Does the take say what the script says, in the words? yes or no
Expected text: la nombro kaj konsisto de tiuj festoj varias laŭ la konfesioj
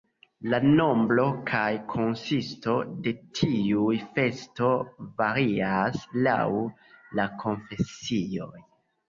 yes